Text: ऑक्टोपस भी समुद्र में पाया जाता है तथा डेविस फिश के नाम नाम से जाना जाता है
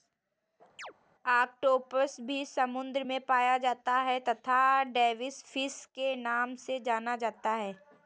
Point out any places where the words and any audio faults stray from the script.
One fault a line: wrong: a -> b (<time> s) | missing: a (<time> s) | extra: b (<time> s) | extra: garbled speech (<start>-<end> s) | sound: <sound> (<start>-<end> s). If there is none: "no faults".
sound: chirp (0.8-0.9 s)
missing: नाम (6.5 s)